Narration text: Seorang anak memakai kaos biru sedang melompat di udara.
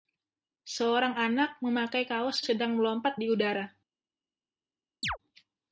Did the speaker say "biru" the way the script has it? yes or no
no